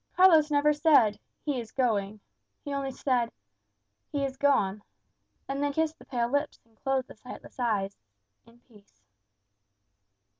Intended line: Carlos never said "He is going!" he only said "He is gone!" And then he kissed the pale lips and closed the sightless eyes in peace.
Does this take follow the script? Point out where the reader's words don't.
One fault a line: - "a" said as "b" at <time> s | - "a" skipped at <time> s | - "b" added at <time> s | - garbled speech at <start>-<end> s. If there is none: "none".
- "he" skipped at 5.7 s